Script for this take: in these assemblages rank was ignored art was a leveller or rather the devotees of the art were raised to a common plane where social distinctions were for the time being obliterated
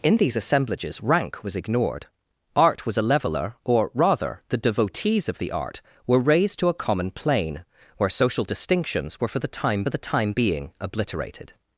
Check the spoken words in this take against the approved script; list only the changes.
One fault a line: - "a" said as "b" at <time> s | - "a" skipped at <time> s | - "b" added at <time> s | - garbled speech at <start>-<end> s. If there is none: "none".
- "the time" added at 9.9 s